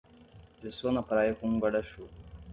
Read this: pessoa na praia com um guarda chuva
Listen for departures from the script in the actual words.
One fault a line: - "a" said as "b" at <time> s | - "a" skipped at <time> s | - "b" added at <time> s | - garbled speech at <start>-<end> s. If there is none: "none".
none